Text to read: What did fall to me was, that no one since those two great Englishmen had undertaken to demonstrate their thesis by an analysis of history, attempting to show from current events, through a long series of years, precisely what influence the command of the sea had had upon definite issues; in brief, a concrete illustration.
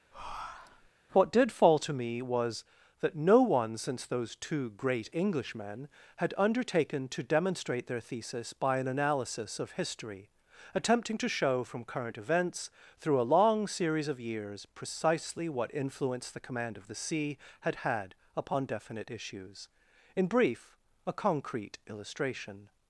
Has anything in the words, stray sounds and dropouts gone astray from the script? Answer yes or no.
yes